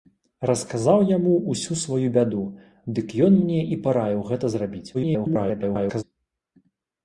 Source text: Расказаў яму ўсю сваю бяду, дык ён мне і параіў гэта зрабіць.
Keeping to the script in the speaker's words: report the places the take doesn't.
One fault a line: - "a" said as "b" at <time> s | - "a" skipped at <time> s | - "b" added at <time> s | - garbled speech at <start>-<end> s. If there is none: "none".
- garbled speech at 4.9-6.0 s